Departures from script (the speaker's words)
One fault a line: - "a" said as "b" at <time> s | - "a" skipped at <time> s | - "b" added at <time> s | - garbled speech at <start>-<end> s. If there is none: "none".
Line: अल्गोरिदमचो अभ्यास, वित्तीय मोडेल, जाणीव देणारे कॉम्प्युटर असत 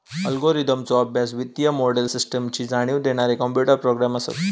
- "सिस्टमची" added at 2.1 s
- "प्रोग्रॅम" added at 3.8 s